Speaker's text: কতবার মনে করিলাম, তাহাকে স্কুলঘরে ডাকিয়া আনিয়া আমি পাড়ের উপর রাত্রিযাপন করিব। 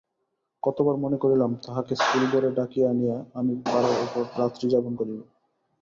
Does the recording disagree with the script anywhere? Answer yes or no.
no